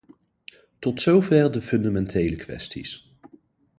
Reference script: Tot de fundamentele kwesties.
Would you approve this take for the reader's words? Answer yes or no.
no